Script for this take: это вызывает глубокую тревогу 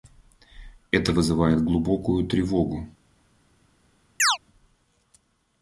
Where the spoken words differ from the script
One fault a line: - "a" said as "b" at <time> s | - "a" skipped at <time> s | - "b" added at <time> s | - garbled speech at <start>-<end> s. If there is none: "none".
none